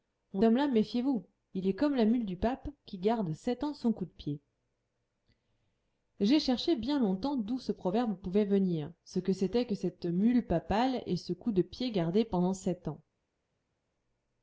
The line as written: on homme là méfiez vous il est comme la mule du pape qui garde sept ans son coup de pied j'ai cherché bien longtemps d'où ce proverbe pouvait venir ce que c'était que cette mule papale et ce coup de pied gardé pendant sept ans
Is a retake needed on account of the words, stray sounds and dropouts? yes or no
no